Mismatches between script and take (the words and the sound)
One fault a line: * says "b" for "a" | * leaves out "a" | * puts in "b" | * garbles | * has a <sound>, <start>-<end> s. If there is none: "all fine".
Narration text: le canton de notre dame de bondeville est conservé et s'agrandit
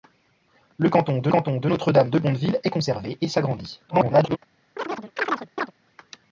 * puts in "canton de"
* garbles
* has a chirp, 4.8-5.7 s